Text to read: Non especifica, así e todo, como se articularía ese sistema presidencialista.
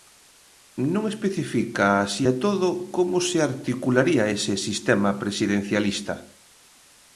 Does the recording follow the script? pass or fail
pass